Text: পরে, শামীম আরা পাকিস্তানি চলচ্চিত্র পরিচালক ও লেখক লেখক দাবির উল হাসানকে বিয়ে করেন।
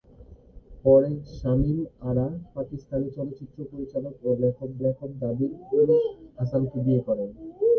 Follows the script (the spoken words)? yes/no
yes